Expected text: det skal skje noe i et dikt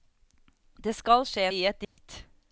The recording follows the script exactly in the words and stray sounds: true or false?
false